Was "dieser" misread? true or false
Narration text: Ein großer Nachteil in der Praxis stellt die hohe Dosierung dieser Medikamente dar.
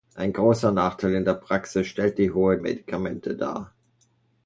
true